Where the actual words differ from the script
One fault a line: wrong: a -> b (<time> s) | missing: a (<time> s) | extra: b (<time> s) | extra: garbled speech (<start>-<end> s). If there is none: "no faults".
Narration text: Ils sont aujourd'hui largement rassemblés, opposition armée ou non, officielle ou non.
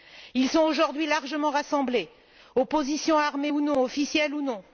no faults